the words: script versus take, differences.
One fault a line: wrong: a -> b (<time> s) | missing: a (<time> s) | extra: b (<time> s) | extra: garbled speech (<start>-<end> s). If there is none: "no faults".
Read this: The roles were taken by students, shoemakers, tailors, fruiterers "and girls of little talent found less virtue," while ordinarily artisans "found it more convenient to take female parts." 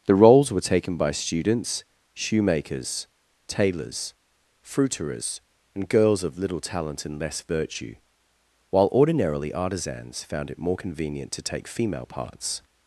wrong: found -> and (7.1 s)